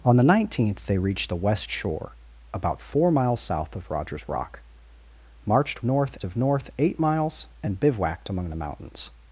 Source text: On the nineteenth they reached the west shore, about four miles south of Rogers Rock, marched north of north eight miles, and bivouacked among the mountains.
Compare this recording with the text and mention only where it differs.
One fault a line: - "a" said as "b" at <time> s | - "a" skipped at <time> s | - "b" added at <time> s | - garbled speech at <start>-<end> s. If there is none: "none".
none